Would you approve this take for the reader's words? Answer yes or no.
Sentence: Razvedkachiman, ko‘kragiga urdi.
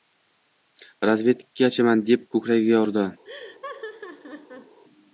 no